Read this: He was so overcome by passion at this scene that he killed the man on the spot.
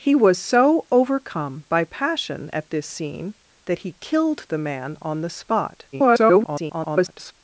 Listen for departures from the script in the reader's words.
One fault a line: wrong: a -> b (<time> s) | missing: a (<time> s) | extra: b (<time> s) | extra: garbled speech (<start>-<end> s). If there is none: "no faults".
extra: garbled speech (5.9-7.3 s)